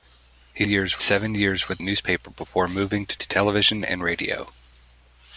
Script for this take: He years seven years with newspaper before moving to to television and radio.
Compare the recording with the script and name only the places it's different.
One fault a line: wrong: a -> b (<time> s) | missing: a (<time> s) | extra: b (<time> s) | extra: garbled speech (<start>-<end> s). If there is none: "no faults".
no faults